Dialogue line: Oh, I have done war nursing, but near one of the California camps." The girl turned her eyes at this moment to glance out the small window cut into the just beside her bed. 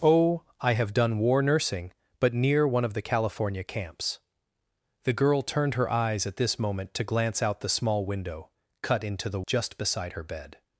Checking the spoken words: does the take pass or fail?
pass